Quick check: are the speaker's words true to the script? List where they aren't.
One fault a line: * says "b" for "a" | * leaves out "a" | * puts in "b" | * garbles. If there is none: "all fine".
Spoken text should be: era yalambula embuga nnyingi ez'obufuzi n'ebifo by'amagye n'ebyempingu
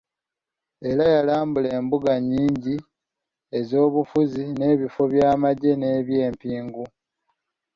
all fine